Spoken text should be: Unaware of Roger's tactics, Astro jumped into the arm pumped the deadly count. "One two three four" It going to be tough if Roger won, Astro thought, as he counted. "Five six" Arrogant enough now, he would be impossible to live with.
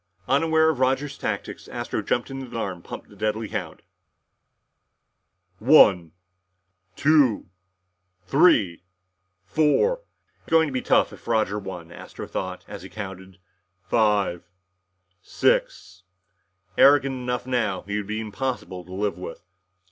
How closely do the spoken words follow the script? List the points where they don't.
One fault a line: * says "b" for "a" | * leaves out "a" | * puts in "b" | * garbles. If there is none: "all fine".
all fine